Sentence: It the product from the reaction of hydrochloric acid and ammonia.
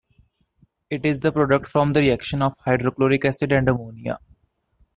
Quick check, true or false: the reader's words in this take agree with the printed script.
false